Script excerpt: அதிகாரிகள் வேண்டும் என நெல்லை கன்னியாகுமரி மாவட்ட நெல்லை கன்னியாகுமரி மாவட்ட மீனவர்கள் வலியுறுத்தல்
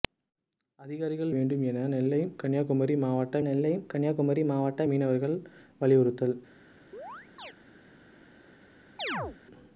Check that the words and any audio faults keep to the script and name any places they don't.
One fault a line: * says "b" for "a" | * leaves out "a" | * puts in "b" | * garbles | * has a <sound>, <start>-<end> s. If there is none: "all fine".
* has a chirp, 6.9-7.5 s
* has a chirp, 9.0-9.4 s